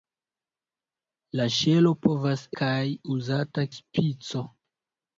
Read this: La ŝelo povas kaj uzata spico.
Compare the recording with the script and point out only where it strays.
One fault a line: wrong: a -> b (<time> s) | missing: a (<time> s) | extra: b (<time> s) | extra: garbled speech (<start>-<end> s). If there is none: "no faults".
no faults